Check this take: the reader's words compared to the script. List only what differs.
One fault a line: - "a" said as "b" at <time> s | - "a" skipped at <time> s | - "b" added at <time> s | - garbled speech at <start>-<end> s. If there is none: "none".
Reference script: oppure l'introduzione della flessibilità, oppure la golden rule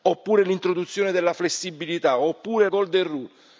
- "la" skipped at 2.7 s